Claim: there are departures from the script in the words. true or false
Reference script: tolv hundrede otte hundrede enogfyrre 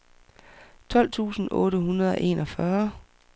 true